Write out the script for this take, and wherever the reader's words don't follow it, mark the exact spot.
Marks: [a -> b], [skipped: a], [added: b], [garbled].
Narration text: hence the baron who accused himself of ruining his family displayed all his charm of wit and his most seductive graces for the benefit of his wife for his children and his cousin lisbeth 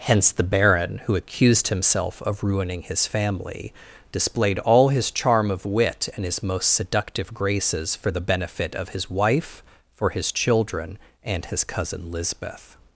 hence the baron who accused himself of ruining his family displayed all his charm of wit and his most seductive graces for the benefit of his wife for his children and his cousin lisbeth